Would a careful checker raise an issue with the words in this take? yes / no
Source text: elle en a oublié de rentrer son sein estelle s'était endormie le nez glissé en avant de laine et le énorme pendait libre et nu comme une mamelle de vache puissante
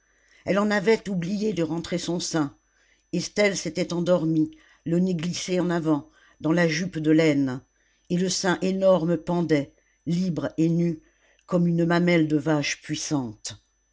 yes